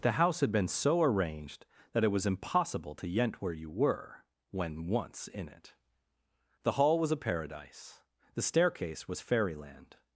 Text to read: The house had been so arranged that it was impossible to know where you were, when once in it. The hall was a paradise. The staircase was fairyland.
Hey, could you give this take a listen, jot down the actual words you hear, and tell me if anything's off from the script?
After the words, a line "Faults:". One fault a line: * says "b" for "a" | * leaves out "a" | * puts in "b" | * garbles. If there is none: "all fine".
The house had been so arranged that it was impossible to yent where you were, when once in it. The hall was a paradise. The staircase was fairyland.
Faults:
* says "yent" for "know"